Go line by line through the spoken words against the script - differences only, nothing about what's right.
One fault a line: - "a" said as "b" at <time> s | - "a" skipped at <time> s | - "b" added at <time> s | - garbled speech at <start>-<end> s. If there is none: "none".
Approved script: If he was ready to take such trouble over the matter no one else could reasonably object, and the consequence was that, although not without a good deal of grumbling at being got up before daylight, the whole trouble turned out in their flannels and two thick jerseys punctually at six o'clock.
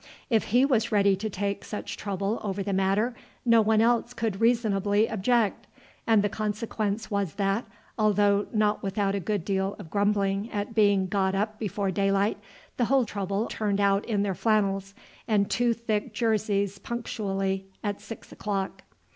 none